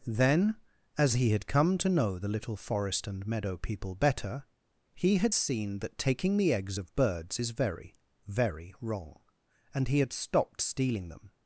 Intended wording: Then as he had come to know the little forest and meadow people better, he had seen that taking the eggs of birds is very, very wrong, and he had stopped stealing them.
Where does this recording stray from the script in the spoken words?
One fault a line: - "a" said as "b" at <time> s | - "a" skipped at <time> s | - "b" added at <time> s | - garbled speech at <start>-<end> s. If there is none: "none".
none